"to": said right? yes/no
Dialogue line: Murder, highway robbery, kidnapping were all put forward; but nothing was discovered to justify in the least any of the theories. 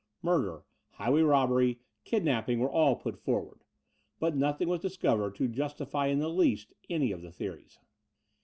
yes